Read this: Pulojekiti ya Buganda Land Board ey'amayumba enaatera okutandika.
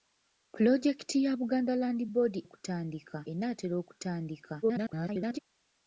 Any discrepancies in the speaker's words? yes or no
yes